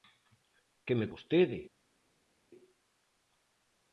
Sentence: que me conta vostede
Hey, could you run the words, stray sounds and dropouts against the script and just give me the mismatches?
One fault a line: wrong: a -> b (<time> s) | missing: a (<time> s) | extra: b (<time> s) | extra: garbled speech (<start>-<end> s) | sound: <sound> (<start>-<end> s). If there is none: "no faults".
missing: conta (1.1 s)